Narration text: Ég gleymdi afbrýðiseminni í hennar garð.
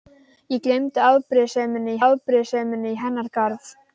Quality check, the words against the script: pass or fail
fail